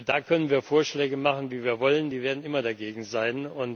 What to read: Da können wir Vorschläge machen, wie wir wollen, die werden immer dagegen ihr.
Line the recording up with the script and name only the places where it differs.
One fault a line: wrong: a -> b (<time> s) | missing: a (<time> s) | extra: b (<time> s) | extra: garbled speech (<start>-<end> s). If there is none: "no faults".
wrong: ihr -> sein (3.0 s)